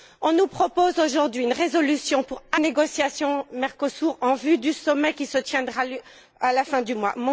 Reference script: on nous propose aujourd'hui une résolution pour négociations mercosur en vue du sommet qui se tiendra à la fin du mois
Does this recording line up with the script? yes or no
yes